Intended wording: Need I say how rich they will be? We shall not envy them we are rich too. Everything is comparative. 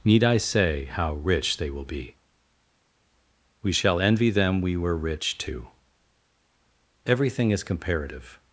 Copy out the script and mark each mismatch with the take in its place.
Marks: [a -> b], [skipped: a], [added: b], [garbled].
Need I say how rich they will be? We shall [skipped: not] envy them we [are -> were] rich too. Everything is comparative.